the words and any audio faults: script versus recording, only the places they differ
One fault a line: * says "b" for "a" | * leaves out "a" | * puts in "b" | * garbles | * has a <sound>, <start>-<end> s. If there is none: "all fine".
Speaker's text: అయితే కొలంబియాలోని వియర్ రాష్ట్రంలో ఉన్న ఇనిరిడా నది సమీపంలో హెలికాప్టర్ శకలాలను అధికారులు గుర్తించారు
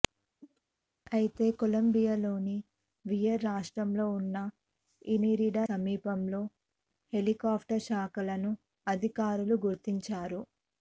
* has a cough, 0.4-0.6 s
* leaves out "నది"